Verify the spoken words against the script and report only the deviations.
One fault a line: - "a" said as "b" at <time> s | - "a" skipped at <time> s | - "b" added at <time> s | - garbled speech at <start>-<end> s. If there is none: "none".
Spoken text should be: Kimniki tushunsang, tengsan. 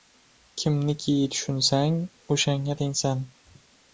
- "o‘shanga" added at 2.4 s